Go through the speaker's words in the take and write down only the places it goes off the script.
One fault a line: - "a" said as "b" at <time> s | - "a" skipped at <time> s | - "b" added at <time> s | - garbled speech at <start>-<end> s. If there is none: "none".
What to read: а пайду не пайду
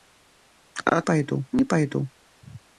none